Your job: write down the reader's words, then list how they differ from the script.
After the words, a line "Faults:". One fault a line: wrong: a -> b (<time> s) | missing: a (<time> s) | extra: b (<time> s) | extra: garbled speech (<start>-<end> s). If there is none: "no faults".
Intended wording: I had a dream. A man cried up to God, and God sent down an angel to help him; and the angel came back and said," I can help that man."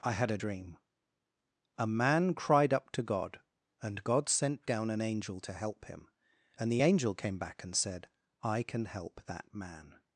I had a dream. A man cried up to God, and God sent down an angel to help him; and the angel came back and said," I can help that man."
Faults:
no faults